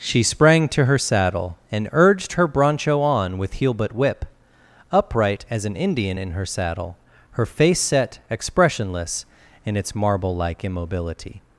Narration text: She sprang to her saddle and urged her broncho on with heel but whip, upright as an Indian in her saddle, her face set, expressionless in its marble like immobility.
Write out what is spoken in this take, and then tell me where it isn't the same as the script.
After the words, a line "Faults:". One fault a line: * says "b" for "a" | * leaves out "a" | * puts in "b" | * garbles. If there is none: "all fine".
She sprang to her saddle and urged her broncho on with heel but whip, upright as an Indian in her saddle, her face set, expressionless in its marble like immobility.
Faults:
all fine